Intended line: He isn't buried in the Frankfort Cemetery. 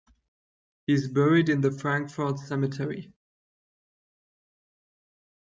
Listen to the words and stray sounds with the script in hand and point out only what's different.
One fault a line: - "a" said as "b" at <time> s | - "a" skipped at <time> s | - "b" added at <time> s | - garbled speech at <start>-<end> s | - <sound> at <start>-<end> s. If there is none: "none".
- "isn't" said as "is" at 0.9 s